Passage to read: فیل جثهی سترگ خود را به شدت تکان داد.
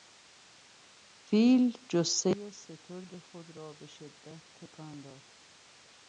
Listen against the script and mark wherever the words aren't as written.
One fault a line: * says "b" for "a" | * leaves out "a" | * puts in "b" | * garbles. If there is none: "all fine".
all fine